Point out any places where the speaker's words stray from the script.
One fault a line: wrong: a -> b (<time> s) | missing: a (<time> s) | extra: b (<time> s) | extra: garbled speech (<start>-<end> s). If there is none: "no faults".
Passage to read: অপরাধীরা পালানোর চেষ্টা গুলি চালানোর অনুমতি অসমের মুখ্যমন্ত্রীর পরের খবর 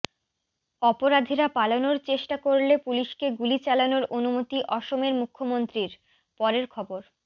extra: করলে পুলিশকে (2.5 s)